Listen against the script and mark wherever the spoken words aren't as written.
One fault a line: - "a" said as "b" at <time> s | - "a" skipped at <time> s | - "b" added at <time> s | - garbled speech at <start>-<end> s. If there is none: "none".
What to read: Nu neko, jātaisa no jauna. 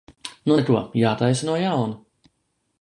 none